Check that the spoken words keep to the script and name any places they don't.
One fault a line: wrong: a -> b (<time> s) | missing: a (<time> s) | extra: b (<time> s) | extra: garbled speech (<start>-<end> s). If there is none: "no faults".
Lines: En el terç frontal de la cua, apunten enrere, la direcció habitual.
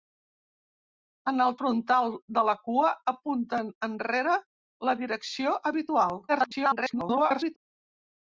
missing: terç (1.6 s)
extra: garbled speech (6.3-7.6 s)